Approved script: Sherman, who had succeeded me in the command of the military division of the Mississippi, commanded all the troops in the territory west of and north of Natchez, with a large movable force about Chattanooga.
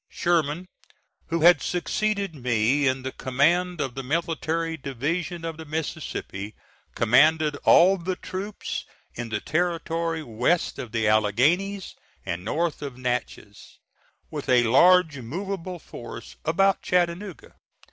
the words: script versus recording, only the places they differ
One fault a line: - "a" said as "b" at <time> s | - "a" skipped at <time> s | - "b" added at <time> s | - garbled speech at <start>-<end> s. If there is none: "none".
- "the Alleghanies" added at 10.9 s